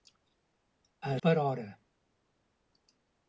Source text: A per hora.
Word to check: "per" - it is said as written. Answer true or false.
true